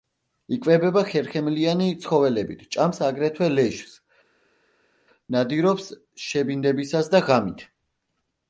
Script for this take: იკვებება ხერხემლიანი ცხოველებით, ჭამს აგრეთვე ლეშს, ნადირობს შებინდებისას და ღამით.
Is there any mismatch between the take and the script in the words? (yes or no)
no